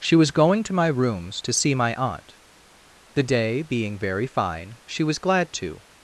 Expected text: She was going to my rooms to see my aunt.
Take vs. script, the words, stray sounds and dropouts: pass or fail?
fail